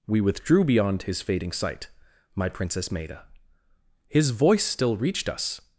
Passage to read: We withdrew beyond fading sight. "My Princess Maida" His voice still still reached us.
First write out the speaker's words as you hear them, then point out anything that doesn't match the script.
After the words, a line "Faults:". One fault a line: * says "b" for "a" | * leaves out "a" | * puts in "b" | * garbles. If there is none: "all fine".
We withdrew beyond his fading sight. "My Princess Maida" His voice still reached us.
Faults:
* puts in "his"
* leaves out "still"